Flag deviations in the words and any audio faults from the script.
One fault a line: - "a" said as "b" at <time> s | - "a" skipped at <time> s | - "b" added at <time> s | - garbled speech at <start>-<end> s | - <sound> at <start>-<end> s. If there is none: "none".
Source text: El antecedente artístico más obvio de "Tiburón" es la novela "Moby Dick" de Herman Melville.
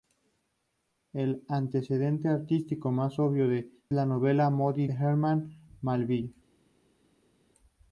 - "Tiburón es" skipped at 3.7 s
- "Dick de" skipped at 4.9 s